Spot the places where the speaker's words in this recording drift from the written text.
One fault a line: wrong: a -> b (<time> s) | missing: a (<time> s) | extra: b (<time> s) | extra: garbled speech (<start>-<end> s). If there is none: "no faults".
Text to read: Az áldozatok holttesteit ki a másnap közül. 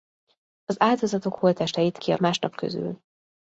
no faults